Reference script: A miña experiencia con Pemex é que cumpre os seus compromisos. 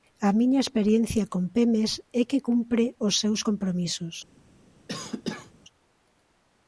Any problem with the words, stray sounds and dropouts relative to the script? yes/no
yes